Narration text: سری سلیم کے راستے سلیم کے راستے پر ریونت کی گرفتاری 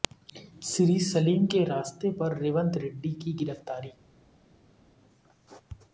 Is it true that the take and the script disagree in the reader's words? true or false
true